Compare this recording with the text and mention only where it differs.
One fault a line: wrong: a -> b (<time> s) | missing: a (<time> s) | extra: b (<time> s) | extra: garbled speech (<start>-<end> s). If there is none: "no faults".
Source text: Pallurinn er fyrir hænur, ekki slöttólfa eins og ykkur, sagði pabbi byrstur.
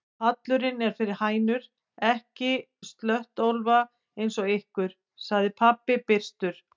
no faults